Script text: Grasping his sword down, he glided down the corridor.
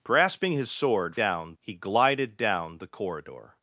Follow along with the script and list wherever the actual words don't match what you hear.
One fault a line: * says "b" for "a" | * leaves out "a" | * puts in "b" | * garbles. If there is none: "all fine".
all fine